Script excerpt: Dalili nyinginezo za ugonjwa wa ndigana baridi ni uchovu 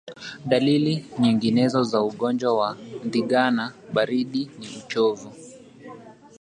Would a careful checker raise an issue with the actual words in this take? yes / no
no